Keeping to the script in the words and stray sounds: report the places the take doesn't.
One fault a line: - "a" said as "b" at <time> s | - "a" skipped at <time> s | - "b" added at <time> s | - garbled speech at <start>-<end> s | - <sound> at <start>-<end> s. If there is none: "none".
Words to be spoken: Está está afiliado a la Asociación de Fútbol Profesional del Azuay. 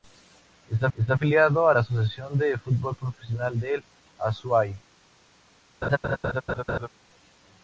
- laugh at 5.8-6.9 s